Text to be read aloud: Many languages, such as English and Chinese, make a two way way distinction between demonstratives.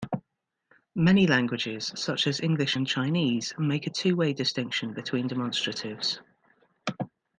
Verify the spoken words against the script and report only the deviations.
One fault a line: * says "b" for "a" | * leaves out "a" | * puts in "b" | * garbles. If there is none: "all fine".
* leaves out "way"